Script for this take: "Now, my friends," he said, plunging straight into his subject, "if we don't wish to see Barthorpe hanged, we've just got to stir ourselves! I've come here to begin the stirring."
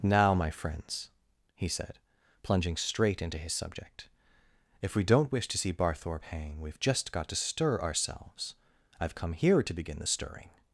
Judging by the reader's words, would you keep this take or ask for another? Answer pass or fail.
fail